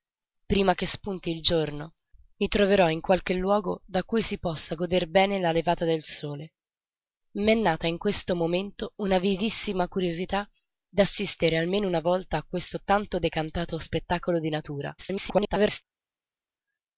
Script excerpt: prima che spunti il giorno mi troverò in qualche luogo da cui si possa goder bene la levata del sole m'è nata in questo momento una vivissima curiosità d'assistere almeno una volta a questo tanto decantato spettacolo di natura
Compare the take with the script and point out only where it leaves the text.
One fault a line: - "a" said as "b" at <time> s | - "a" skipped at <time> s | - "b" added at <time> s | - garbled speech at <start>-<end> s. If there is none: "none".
- garbled speech at 15.0-15.8 s